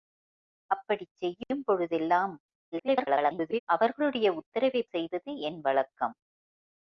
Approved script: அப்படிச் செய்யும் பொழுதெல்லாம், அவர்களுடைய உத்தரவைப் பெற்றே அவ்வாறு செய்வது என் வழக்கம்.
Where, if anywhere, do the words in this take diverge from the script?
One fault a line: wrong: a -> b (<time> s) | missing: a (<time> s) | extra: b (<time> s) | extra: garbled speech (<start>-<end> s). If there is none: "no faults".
extra: garbled speech (2.7-3.6 s)
missing: பெற்றே அவ்வாறு (4.9 s)